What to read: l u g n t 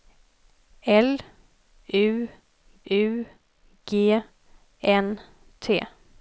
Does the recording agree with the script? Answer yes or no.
no